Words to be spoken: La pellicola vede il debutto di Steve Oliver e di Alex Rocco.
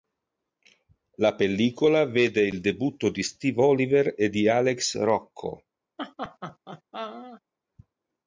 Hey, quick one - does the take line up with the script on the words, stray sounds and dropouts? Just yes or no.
no